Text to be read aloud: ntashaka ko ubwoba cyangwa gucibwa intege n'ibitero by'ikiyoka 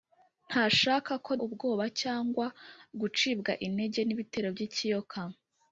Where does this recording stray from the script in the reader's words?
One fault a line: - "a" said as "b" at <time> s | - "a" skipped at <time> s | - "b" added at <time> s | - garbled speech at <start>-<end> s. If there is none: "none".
none